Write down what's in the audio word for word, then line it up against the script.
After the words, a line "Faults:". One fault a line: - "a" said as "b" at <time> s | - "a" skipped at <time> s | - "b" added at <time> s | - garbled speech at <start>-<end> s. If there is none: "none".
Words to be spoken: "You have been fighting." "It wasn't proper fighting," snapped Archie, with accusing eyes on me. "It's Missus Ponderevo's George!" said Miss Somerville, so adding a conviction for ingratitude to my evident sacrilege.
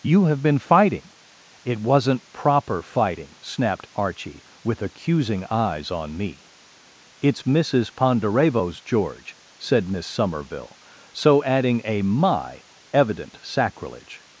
"You have been fighting." "It wasn't proper fighting," snapped Archie, with accusing eyes on me. "It's Missus Ponderevo's George!" said Miss Somerville, so adding a my evident sacrilege.
Faults:
- "conviction for ingratitude to" skipped at 12.0 s